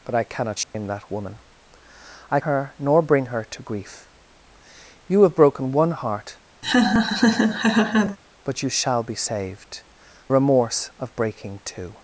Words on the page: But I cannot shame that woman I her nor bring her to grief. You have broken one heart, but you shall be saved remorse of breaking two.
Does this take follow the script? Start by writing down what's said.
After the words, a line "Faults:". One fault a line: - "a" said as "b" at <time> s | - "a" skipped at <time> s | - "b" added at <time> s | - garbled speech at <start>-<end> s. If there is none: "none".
But I cannot shame that woman I her nor bring her to grief. You have broken one heart, but you shall be saved remorse of breaking two.
Faults:
none